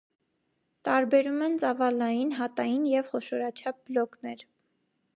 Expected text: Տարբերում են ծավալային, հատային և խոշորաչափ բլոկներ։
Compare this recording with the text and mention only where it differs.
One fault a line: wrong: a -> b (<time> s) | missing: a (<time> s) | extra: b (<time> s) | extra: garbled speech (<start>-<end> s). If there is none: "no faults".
no faults